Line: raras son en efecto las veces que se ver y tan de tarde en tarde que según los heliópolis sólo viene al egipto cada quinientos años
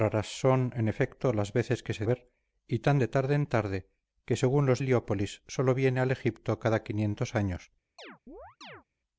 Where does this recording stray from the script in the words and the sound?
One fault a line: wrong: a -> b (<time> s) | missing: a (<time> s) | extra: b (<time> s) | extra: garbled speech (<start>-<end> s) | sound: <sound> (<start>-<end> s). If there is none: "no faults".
sound: chirp (8.0-8.8 s)